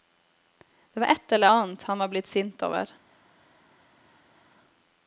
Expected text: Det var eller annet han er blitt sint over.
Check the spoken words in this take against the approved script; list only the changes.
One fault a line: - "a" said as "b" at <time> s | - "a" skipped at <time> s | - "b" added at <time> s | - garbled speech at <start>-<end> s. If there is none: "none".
- "ett" added at 1.1 s
- "er" said as "var" at 2.0 s